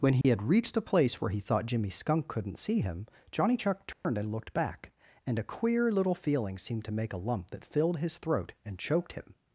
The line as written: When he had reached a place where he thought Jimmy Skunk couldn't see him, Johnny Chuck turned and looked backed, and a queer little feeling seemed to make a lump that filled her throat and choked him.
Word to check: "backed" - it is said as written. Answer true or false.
false